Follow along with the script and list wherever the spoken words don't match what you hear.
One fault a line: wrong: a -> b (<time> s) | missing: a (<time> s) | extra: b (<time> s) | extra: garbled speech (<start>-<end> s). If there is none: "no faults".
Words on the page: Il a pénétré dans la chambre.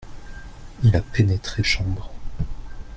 missing: dans la (1.6 s)